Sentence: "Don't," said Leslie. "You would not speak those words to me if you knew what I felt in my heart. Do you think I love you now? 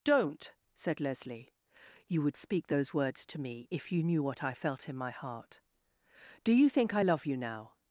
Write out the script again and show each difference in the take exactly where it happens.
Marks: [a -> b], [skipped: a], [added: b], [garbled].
"Don't," said Leslie. "You would [skipped: not] speak those words to me if you knew what I felt in my heart. Do you think I love you now?